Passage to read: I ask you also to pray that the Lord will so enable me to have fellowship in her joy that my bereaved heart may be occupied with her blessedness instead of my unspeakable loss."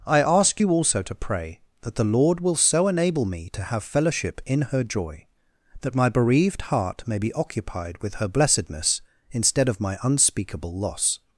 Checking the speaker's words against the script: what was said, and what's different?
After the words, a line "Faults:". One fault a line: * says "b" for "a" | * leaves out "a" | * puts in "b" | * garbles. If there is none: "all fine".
I ask you also to pray that the Lord will so enable me to have fellowship in her joy that my bereaved heart may be occupied with her blessedness instead of my unspeakable loss."
Faults:
all fine